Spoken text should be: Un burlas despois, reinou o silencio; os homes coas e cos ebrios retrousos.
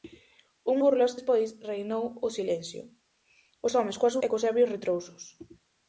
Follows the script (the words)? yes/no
yes